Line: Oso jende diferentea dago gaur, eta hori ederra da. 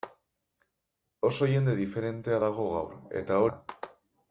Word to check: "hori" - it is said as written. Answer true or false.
false